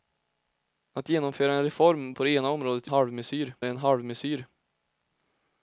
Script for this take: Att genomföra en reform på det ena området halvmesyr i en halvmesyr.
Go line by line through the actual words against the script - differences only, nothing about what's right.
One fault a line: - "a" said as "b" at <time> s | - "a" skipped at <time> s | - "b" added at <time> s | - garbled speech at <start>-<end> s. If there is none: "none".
none